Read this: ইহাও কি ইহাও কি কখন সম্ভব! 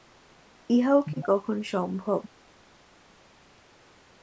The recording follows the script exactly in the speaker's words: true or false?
false